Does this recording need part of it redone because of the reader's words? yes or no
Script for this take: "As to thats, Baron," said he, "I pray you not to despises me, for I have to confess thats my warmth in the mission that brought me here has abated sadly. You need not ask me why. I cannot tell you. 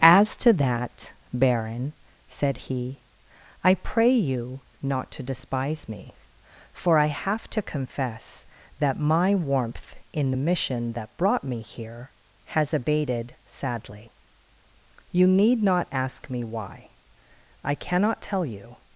yes